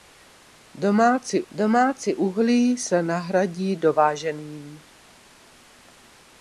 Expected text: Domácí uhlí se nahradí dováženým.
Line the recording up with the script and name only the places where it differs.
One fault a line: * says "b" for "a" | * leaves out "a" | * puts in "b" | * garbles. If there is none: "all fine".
* puts in "domácí"